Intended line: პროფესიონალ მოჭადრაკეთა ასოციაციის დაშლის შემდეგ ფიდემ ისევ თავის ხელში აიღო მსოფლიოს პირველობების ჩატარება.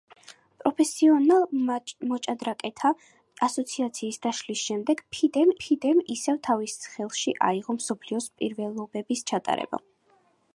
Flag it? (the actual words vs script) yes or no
yes